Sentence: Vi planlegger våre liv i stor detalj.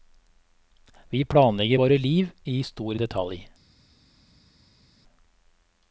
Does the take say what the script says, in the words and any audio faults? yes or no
yes